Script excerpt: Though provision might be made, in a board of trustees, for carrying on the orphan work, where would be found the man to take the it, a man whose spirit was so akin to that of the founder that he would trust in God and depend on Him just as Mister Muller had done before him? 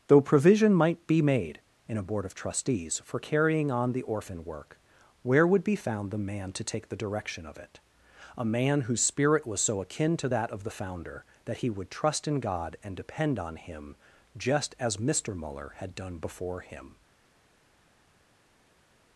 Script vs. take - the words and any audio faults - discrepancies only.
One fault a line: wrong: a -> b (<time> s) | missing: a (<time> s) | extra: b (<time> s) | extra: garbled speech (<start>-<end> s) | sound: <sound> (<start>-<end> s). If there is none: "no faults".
extra: direction of (7.0 s)